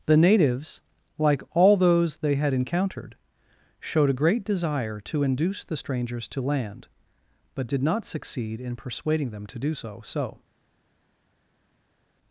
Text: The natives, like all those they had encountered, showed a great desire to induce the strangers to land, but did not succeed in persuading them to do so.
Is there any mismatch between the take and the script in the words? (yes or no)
yes